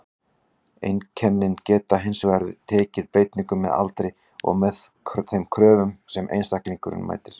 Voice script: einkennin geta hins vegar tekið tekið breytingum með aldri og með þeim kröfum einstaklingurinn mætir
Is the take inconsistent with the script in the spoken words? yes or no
yes